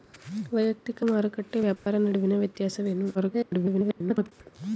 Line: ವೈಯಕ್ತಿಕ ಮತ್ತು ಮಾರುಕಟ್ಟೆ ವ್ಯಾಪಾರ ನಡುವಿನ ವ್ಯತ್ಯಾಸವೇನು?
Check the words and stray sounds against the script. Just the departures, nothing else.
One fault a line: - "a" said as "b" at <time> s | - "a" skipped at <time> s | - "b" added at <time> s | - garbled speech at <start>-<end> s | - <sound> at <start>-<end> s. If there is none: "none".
- "ಮತ್ತು" skipped at 1.0 s
- dropout at 1.8-1.9 s
- garbled speech at 3.1-4.3 s